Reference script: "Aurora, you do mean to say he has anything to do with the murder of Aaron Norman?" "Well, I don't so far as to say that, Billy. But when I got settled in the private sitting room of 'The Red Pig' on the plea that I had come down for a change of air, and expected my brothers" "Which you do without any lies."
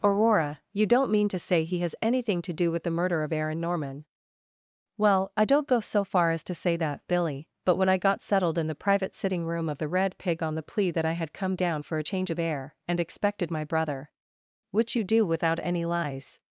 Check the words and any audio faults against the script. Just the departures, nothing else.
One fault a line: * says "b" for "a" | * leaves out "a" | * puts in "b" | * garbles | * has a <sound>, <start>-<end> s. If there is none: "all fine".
* says "don't" for "do"
* puts in "go"
* says "brother" for "brothers"